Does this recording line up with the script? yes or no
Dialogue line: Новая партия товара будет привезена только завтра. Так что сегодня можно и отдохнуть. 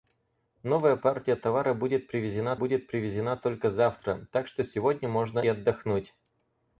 no